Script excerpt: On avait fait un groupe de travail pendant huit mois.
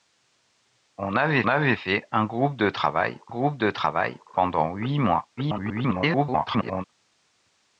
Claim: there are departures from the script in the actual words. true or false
true